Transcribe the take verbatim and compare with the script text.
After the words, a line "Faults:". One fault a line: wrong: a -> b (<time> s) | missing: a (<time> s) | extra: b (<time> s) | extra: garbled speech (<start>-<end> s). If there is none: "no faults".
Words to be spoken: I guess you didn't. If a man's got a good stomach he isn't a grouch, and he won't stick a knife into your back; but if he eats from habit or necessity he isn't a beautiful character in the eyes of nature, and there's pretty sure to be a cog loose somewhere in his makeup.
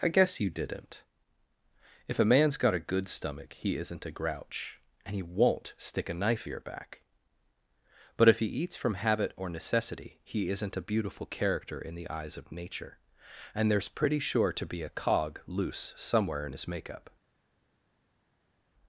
I guess you didn't. If a man's got a good stomach he isn't a grouch, and he won't stick a knife your back; but if he eats from habit or necessity he isn't a beautiful character in the eyes of nature, and there's pretty sure to be a cog loose somewhere in his makeup.
Faults:
missing: into (6.5 s)